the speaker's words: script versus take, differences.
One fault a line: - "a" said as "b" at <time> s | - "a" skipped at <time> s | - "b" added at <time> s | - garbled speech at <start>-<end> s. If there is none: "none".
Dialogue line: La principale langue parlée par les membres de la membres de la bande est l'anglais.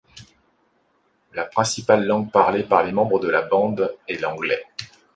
- "membres de la" skipped at 3.4 s